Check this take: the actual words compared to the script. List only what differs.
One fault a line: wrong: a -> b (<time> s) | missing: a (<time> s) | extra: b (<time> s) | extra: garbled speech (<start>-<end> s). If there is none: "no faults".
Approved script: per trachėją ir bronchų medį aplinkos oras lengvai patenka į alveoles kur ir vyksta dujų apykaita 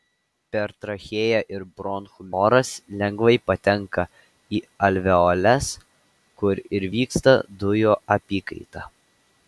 missing: medį aplinkos (2.2 s)